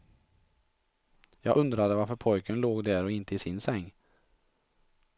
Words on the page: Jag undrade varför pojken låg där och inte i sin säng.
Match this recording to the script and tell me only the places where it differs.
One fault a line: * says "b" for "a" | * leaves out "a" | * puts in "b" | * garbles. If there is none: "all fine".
all fine